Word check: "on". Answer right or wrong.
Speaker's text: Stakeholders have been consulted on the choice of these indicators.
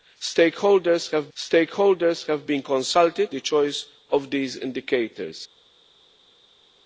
wrong